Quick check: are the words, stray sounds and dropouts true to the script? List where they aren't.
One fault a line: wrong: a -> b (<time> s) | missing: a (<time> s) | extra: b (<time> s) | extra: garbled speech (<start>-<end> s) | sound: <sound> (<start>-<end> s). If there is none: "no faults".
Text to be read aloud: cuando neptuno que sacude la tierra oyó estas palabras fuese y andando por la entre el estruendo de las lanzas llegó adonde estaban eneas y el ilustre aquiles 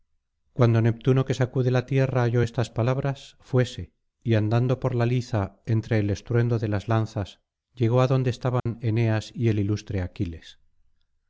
extra: liza (5.1 s)
sound: dropout (8.6-8.7 s)